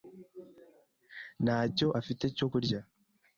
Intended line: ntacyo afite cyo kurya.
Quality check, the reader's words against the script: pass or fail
pass